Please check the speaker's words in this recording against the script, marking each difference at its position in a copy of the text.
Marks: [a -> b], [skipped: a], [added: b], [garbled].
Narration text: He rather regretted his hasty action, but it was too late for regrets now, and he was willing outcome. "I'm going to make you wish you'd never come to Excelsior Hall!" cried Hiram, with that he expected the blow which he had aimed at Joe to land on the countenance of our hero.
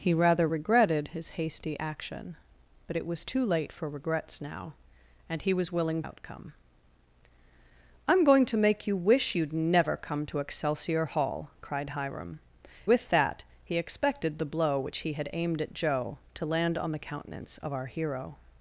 He rather regretted his hasty action, but it was too late for regrets now, and he was willing outcome. "I'm going to make you wish you'd never come to Excelsior Hall!" cried Hiram, with that he expected the blow which he had aimed at Joe to land on the countenance of our hero.